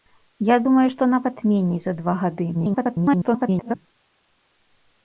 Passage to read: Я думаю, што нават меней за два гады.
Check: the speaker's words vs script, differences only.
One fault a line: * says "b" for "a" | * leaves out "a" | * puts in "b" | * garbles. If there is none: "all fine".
* garbles